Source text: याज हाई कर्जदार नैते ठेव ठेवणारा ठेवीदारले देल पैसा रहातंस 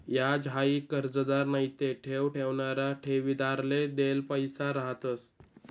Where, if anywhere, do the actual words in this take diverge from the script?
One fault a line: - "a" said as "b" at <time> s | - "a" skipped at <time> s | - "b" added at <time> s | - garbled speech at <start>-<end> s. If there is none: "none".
none